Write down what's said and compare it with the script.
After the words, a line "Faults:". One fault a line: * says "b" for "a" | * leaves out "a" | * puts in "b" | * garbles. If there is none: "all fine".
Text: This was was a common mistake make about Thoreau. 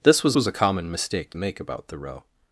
This was was a common mistake make about Thoreau.
Faults:
all fine